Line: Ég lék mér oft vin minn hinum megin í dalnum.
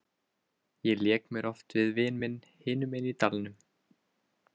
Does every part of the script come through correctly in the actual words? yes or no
no